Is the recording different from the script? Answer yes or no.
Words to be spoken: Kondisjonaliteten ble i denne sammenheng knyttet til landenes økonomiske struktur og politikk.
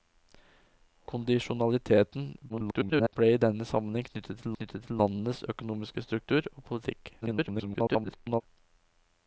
yes